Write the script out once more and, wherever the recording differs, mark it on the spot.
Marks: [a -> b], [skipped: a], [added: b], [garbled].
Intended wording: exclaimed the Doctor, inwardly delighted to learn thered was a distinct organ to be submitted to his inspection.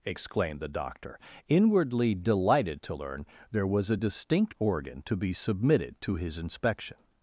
exclaimed the Doctor, inwardly delighted to learn [thered -> there] was a distinct organ to be submitted to his inspection.